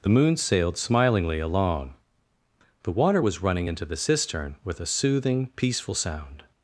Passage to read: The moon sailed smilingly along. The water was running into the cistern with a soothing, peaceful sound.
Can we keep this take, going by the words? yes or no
yes